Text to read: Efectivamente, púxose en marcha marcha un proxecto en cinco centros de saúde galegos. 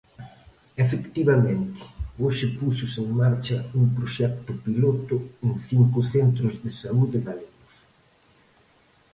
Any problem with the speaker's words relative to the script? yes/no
yes